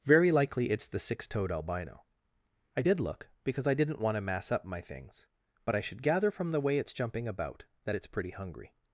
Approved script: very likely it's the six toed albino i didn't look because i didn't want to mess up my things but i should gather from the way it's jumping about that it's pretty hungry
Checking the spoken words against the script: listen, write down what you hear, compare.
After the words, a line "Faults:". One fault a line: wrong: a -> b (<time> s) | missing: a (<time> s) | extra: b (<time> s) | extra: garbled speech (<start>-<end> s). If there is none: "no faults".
very likely it's the six toed albino i did look because i didn't want to mass up my things but i should gather from the way it's jumping about that it's pretty hungry
Faults:
wrong: didn't -> did (2.8 s)
wrong: mess -> mass (4.2 s)